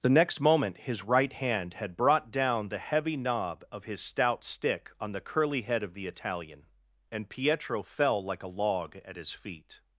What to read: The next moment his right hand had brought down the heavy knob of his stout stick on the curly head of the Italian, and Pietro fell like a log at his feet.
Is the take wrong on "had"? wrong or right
right